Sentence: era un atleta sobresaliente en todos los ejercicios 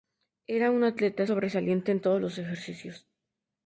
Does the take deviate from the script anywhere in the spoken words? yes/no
no